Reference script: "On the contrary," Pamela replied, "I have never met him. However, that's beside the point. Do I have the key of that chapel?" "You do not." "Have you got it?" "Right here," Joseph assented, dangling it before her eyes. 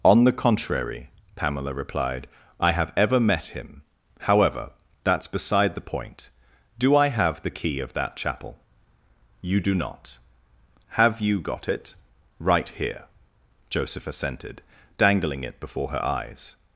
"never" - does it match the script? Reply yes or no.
no